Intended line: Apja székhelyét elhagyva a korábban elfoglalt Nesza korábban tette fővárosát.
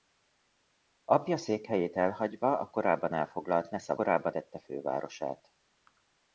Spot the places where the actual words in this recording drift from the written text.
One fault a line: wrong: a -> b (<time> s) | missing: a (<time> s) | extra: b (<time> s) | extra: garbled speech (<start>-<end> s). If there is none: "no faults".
no faults